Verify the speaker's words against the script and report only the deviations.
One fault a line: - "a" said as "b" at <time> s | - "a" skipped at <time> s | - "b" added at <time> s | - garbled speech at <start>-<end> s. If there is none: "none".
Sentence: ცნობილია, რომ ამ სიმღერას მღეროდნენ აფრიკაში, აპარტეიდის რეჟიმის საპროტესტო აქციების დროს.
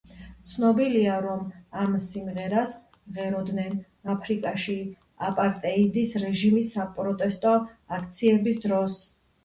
none